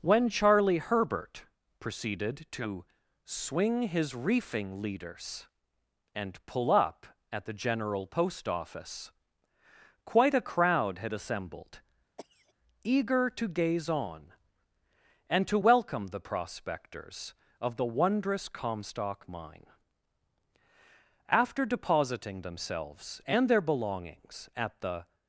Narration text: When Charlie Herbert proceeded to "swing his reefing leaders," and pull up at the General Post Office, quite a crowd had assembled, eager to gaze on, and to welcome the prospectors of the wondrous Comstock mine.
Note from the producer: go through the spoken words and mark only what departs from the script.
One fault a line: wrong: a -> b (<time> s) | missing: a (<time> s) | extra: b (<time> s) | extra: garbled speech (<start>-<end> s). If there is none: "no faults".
extra: After depositing themselves and their belongings at the (21.3 s)